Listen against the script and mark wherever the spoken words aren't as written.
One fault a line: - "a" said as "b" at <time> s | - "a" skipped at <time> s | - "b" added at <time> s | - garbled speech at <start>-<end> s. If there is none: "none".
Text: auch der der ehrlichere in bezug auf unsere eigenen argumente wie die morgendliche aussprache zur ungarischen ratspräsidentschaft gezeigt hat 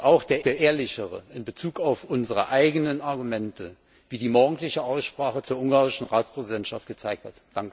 none